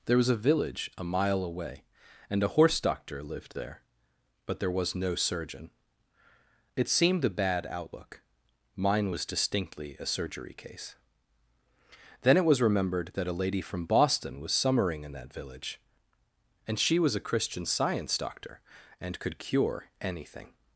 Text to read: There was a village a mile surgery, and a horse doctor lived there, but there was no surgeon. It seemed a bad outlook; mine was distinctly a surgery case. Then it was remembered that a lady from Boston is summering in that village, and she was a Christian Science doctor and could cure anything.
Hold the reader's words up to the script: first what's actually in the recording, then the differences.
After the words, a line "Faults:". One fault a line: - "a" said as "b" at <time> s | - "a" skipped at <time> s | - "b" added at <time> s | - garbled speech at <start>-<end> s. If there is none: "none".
There was a village a mile away, and a horse doctor lived there, but there was no surgeon. It seemed a bad outlook; mine was distinctly a surgery case. Then it was remembered that a lady from Boston was summering in that village, and she was a Christian Science doctor and could cure anything.
Faults:
- "surgery" said as "away" at 1.4 s
- "is" said as "was" at 14.4 s